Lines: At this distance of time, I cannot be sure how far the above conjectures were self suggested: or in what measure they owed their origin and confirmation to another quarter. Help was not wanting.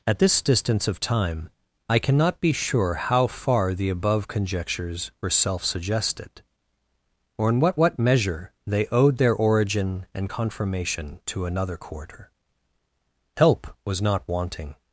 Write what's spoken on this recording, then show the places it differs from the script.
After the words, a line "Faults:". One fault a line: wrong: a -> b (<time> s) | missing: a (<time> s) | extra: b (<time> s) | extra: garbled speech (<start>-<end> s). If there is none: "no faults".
At this distance of time, I cannot be sure how far the above conjectures were self suggested: or in what what measure they owed their origin and confirmation to another quarter. Help was not wanting.
Faults:
extra: what (7.8 s)